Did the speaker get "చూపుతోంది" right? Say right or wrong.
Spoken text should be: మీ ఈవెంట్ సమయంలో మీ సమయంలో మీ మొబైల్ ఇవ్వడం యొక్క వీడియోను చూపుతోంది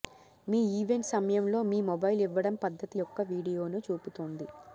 right